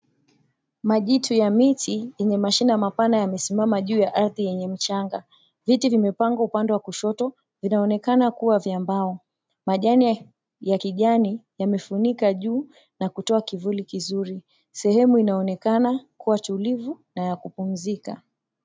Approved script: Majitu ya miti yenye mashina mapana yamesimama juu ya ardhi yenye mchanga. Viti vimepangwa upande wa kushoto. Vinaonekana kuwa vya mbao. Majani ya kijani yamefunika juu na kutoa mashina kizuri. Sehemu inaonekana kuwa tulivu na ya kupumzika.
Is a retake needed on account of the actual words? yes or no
yes